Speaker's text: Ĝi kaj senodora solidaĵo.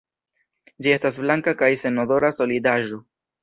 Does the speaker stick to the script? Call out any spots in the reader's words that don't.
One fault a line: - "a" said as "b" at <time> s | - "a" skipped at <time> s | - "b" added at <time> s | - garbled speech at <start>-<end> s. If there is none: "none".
- "estas blanka" added at 0.9 s